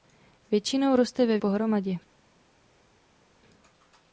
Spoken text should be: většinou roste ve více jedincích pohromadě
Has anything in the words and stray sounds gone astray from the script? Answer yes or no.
yes